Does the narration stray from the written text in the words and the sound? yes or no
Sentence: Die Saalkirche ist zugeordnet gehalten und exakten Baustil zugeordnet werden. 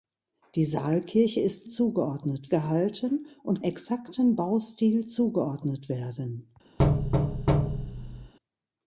yes